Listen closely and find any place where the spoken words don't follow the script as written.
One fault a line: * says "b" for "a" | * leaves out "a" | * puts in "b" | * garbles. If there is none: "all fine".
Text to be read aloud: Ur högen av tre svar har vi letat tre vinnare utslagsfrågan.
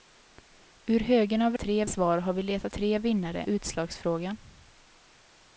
all fine